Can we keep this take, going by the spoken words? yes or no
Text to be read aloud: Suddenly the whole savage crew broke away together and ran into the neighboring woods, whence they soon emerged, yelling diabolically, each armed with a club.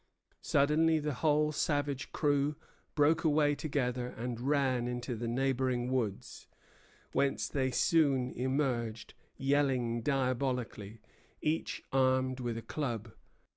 yes